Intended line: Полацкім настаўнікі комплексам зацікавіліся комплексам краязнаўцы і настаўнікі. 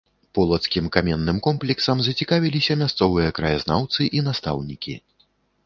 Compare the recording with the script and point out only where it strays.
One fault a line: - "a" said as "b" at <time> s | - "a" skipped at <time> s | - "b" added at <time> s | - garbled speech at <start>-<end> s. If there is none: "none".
- "настаўнікі" said as "каменным" at 0.9 s
- "комплексам" said as "мясцовыя" at 2.8 s